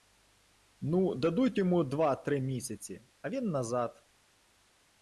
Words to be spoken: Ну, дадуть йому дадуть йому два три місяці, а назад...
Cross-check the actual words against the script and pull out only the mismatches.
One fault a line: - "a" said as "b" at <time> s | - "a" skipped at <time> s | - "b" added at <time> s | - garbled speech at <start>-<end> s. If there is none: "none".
- "дадуть йому" skipped at 1.8 s
- "він" added at 3.3 s